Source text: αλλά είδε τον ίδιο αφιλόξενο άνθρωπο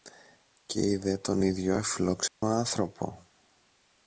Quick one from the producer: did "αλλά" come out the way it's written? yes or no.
no